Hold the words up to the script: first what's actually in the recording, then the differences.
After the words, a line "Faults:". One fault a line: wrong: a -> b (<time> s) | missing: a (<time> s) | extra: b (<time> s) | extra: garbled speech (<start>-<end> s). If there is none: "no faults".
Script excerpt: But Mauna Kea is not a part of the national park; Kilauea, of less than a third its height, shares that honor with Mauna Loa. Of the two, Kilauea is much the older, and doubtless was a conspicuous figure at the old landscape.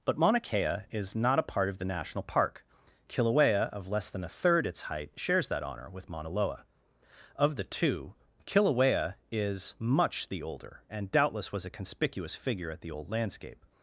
But Mauna Kea is not a part of the national park; Kilauea, of less than a third its height, shares that honor with Mauna Loa. Of the two, Kilauea is much the older, and doubtless was a conspicuous figure at the old landscape.
Faults:
no faults